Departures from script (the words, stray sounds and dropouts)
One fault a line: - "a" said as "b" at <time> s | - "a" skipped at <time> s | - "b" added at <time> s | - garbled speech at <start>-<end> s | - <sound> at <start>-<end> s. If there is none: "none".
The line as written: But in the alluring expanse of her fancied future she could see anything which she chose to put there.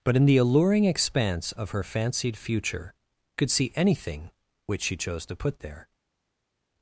- "she" skipped at 2.9 s